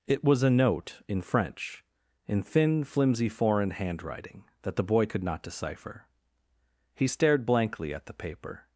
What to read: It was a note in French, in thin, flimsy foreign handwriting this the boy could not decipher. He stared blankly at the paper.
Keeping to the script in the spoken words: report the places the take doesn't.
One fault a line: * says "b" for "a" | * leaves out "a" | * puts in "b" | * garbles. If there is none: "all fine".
* says "that" for "this"